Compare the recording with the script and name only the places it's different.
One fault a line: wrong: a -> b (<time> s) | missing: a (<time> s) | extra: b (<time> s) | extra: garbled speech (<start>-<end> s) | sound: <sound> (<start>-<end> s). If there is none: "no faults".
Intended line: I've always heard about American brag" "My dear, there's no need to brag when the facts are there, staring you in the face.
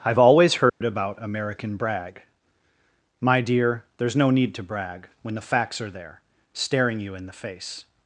sound: dropout (0.7-0.8 s)